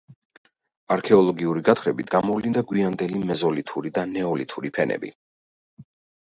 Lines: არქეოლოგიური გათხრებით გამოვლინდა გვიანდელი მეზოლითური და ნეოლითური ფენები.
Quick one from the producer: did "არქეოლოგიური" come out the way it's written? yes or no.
yes